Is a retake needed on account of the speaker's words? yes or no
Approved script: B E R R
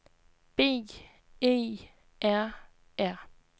no